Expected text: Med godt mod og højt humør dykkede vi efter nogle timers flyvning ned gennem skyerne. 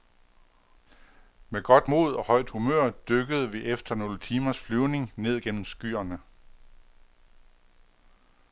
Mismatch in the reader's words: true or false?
false